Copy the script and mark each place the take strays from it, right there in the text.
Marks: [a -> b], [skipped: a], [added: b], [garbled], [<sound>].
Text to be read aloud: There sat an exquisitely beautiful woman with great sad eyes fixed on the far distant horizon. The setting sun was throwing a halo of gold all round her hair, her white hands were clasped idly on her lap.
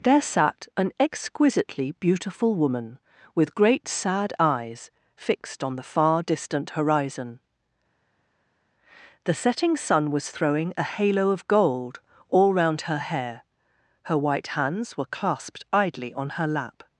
There sat an exquisitely beautiful woman with great sad eyes fixed on the far distant horizon. The setting sun was throwing a halo of gold all round her hair, her white hands were clasped idly on her lap.